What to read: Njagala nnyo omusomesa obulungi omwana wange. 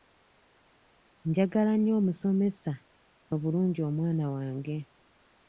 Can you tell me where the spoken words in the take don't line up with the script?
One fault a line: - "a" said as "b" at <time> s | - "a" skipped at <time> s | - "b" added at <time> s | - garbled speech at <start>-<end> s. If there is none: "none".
none